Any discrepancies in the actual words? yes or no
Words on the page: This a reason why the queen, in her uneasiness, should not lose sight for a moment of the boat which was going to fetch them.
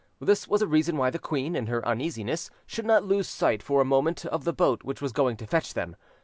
yes